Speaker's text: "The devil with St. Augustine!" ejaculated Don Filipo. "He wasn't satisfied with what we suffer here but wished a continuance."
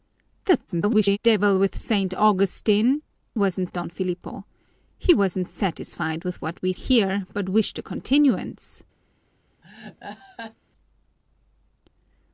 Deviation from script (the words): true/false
true